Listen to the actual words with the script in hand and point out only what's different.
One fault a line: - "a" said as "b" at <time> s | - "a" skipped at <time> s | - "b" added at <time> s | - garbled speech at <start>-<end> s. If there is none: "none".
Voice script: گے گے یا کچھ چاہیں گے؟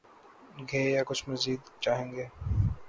- "گے" skipped at 0.8 s
- "مزید" added at 1.3 s